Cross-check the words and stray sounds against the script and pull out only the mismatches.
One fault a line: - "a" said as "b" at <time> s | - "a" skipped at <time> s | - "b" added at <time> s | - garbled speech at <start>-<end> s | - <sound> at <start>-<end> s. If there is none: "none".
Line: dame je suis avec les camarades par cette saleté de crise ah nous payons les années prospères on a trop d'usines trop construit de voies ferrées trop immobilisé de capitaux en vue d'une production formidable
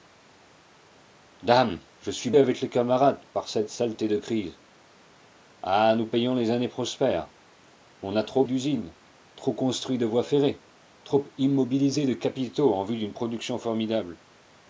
none